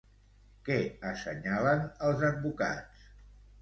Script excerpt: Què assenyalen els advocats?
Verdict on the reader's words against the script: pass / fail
pass